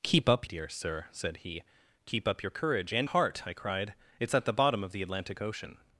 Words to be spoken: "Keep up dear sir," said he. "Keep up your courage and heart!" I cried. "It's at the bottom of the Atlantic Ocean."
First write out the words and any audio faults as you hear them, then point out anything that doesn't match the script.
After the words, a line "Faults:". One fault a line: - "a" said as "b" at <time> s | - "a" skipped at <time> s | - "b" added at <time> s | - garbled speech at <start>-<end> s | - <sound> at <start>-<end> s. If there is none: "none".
"Keep up dear sir," said he. "Keep up your courage and heart!" I cried. "It's at the bottom of the Atlantic Ocean."
Faults:
none